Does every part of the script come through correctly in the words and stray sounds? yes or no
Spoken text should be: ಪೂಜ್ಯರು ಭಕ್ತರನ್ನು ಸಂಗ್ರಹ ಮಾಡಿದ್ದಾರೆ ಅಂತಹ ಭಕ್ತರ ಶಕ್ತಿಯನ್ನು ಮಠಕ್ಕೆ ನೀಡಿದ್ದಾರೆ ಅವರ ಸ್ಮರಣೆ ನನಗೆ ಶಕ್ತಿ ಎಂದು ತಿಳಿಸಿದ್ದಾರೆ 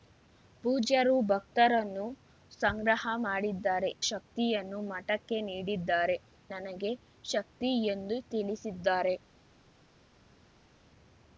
no